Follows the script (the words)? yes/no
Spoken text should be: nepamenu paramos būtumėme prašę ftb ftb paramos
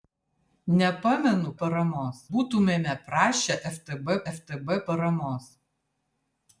yes